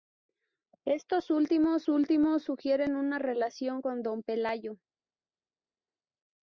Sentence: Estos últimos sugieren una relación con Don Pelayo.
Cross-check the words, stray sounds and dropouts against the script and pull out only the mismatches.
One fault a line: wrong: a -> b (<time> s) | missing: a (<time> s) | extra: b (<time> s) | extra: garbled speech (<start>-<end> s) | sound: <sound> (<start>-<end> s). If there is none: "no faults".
extra: últimos (1.9 s)